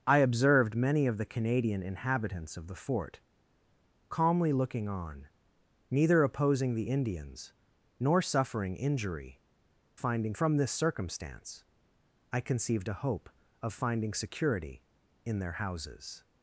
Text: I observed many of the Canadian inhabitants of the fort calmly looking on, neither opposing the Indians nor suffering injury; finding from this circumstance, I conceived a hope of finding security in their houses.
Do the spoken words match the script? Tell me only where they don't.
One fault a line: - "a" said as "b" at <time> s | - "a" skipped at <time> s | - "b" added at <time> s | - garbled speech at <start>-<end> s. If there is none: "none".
none